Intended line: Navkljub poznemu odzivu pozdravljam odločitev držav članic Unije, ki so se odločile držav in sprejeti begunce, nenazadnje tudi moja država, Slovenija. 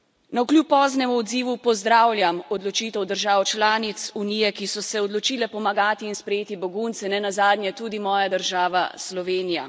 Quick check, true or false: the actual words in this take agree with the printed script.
false